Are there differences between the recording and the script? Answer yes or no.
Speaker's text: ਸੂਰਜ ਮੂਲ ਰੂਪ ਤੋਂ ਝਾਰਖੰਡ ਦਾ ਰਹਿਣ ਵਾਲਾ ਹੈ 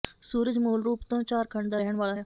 no